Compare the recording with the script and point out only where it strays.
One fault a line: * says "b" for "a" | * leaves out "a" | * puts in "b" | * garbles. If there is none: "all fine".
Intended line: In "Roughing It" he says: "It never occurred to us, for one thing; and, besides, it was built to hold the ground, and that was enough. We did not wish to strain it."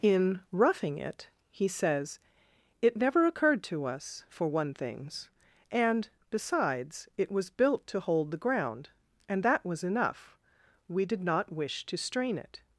* says "things" for "thing"